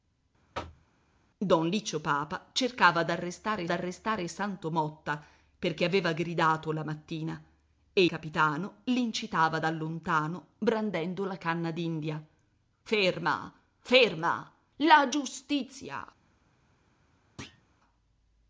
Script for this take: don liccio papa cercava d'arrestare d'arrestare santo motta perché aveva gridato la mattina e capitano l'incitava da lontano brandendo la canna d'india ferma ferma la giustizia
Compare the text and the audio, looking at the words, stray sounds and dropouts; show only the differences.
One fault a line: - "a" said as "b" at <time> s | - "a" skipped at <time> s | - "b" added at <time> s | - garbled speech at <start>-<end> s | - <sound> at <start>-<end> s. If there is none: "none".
- thud at 0.5-0.9 s
- thud at 17.4-17.6 s